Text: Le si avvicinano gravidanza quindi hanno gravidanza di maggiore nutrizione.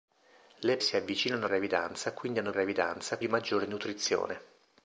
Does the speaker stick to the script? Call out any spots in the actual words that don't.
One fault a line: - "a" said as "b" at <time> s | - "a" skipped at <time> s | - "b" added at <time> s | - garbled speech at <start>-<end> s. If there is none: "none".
none